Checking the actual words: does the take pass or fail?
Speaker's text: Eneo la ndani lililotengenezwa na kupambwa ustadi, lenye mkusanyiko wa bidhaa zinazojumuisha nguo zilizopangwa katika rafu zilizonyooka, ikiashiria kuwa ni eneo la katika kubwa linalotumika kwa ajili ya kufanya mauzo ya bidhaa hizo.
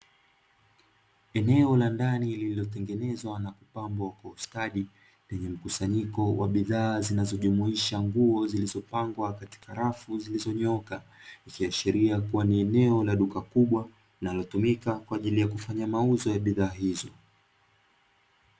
fail